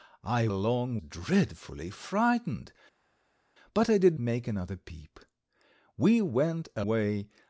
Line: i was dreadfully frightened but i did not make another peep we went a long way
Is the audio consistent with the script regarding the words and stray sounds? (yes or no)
no